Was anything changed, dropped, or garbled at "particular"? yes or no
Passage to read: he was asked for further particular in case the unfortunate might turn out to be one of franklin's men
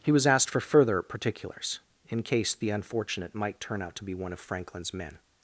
yes